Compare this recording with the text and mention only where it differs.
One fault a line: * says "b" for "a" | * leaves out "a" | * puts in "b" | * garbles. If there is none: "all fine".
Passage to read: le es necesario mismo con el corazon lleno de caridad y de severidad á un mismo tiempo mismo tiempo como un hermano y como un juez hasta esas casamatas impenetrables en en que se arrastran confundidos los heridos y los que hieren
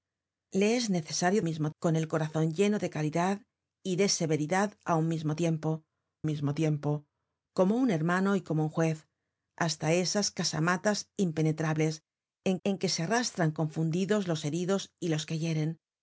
all fine